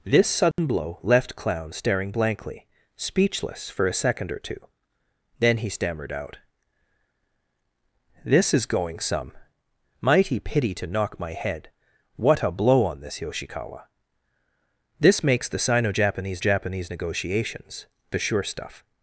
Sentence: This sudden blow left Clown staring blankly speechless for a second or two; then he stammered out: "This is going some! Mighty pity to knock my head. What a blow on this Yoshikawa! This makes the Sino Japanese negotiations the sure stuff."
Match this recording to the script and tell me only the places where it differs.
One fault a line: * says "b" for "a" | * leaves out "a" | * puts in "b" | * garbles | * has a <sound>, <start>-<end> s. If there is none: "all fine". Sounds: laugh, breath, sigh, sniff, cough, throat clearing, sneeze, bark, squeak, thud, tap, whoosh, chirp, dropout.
* has a dropout, 0.5-0.6 s
* puts in "Japanese"